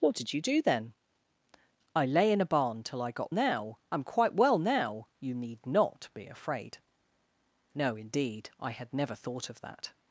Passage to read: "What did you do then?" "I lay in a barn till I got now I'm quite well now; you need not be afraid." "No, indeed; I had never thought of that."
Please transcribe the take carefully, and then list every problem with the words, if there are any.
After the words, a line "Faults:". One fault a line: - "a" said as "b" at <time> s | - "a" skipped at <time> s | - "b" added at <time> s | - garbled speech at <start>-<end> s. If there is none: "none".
"What did you do then?" "I lay in a barn till I got now I'm quite well now; you need not be afraid." "No, indeed; I had never thought of that."
Faults:
none